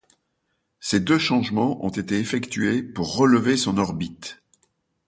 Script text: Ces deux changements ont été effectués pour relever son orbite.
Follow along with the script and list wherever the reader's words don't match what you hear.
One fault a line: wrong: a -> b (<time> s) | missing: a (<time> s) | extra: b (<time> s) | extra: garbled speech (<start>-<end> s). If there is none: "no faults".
no faults